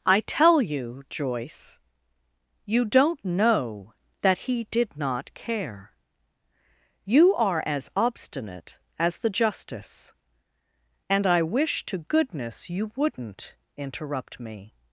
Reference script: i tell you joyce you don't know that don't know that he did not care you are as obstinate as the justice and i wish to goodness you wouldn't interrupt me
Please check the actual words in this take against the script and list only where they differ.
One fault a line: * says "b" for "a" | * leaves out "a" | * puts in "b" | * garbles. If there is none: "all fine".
* leaves out "don't know that"